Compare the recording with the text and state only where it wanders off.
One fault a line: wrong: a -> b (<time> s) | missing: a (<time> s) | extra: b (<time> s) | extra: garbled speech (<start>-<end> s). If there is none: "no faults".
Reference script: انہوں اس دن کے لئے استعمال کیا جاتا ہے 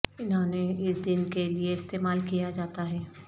extra: نے (0.5 s)